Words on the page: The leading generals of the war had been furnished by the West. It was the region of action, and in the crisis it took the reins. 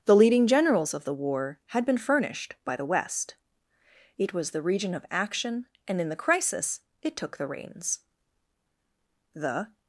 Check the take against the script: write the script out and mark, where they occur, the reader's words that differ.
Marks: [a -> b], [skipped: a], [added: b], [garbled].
The leading generals of the war had been furnished by the West. It was the region of action, and in the crisis it took the reins. [added: The]